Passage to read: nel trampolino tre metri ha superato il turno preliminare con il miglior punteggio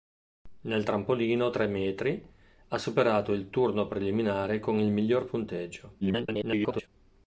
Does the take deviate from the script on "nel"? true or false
false